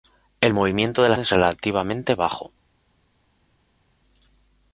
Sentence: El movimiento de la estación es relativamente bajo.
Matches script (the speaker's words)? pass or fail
fail